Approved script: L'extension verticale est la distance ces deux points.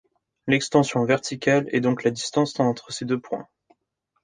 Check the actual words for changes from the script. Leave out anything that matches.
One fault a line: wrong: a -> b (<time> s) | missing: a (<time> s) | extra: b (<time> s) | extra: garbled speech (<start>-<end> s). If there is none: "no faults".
extra: donc (1.8 s)
extra: entre (2.6 s)